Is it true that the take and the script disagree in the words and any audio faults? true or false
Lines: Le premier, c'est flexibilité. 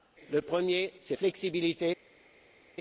false